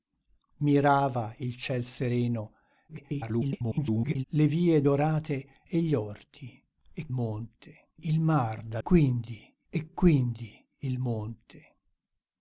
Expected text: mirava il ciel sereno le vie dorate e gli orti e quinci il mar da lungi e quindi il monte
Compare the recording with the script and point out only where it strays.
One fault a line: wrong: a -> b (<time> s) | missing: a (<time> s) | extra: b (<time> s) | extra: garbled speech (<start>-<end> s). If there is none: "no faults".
extra: garbled speech (2.9-4.2 s)
wrong: quinci -> monte (7.1 s)
wrong: lungi -> quindi (8.8 s)